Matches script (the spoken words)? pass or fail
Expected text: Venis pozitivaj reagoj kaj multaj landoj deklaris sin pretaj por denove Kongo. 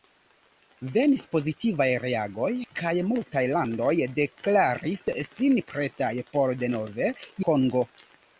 pass